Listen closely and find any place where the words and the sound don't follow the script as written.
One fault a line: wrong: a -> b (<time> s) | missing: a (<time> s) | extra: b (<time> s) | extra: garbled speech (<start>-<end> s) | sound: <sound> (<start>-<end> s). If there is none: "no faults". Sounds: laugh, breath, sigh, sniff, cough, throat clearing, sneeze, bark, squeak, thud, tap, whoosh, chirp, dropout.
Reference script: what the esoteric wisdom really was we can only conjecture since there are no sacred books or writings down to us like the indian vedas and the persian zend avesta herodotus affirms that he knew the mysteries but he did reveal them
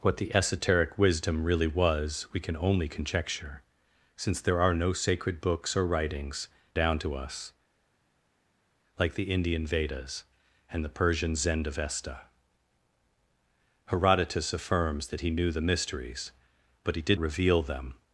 no faults